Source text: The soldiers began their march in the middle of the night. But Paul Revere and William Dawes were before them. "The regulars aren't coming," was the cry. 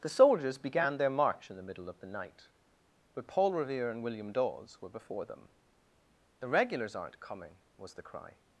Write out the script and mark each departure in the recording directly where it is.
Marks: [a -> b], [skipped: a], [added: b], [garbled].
The soldiers began their march in the middle of the night. But Paul Revere and William Dawes were before them. "The regulars aren't coming," was the cry.